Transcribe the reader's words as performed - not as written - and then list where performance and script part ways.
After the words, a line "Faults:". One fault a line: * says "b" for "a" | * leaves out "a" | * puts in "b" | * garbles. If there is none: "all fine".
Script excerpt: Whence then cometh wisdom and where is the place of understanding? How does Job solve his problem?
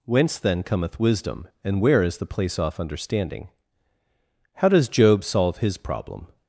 Whence then cometh wisdom and where is the place off understanding? How does Job solve his problem?
Faults:
* says "off" for "of"